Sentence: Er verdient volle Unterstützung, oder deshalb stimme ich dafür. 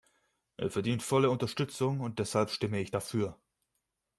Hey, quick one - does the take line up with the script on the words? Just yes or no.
no